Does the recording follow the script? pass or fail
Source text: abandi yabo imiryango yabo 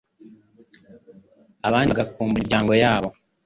fail